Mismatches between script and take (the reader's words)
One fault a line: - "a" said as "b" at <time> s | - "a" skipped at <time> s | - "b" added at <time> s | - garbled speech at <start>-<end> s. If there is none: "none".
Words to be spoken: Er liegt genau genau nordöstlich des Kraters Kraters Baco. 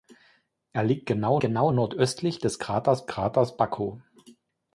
none